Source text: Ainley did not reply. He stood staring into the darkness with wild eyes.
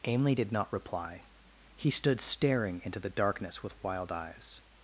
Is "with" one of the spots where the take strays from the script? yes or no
no